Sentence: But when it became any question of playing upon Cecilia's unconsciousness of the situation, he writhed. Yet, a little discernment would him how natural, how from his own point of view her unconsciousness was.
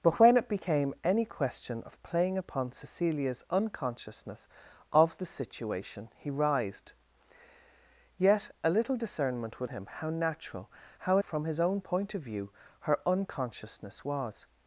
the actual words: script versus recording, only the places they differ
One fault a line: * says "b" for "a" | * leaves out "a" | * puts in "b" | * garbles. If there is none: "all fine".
all fine